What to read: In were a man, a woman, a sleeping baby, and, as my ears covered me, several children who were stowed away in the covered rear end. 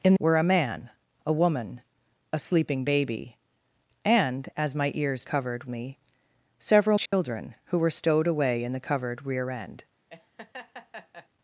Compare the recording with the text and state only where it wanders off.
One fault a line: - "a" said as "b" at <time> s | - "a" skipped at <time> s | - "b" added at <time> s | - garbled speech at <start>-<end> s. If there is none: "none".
none